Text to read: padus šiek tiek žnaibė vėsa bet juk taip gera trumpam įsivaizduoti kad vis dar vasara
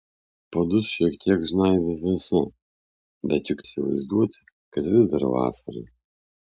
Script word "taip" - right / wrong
wrong